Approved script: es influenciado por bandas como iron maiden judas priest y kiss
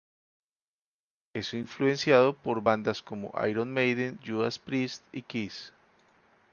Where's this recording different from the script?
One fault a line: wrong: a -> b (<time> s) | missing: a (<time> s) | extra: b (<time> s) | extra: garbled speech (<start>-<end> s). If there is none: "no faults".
no faults